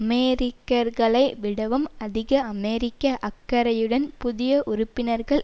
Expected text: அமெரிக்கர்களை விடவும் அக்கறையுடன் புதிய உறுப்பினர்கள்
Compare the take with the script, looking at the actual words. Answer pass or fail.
fail